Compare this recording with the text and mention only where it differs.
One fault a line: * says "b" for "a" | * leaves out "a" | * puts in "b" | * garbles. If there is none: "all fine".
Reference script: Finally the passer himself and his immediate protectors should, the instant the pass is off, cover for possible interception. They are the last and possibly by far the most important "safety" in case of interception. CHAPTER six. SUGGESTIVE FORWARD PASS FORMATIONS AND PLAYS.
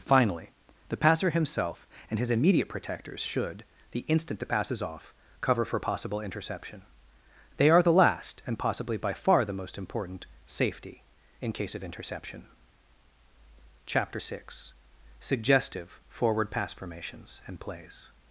all fine